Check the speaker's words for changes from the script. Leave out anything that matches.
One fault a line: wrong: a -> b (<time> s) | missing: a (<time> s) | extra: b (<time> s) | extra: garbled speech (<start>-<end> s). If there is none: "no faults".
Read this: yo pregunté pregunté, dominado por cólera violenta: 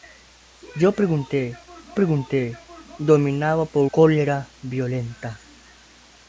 no faults